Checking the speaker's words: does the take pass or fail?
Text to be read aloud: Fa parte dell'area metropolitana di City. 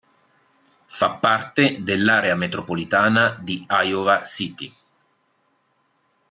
fail